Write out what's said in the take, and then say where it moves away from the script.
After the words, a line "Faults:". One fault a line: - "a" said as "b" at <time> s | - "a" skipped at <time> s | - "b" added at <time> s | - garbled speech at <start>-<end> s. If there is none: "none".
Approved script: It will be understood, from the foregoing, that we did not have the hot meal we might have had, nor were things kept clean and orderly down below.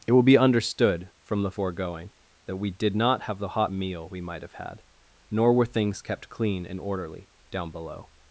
It will be understood, from the foregoing, that we did not have the hot meal we might have had, nor were things kept clean and orderly down below.
Faults:
none